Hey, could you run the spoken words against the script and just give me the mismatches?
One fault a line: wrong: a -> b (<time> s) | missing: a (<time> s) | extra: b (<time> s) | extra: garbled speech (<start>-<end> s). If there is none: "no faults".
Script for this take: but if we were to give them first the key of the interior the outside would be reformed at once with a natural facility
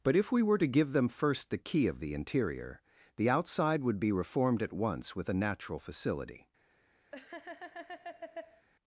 no faults